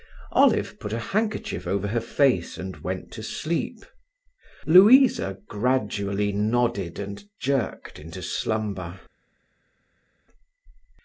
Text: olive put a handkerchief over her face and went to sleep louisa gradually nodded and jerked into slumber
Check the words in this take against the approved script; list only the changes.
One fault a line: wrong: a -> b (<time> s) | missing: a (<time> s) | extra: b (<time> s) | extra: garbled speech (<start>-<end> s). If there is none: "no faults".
no faults